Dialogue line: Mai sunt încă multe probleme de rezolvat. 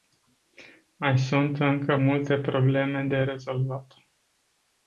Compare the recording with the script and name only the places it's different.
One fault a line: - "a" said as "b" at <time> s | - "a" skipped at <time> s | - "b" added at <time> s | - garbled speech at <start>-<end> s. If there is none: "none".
none